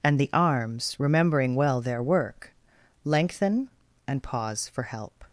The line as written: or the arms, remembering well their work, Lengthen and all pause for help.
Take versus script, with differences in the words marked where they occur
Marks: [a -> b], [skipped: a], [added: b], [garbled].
[or -> and] the arms, remembering well their work, Lengthen and [skipped: all] pause for help.